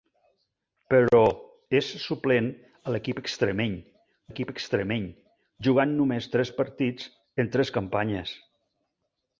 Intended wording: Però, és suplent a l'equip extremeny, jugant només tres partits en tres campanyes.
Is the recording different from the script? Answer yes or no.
yes